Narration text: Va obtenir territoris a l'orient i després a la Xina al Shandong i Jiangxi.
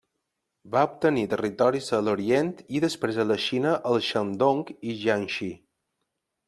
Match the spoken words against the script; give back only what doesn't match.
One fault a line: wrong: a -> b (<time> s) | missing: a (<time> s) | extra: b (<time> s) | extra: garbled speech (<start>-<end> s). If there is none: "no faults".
no faults